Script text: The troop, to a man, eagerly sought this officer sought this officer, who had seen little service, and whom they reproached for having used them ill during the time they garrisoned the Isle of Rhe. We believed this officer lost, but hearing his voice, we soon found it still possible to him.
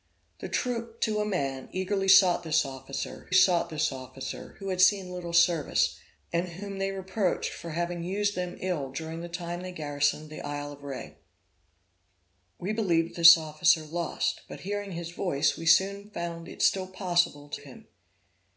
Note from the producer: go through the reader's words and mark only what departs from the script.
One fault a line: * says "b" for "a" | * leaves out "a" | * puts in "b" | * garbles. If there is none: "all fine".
all fine